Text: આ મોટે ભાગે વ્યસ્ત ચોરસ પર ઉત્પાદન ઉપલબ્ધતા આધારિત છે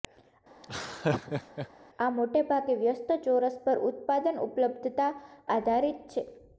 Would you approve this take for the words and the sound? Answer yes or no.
no